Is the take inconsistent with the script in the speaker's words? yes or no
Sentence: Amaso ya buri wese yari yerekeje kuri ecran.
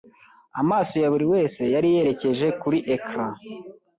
no